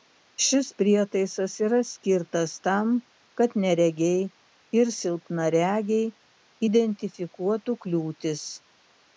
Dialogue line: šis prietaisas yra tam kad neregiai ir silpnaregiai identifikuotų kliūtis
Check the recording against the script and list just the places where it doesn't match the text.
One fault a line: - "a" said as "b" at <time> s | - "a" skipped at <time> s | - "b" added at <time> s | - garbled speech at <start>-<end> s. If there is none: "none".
- "skirtas" added at 1.9 s